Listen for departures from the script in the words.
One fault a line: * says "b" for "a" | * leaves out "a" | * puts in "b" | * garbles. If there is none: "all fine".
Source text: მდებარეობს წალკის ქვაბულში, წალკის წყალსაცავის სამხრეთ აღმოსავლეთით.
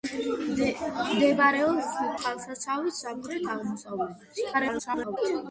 * leaves out "წალკის ქვაბულში წალკის"
* garbles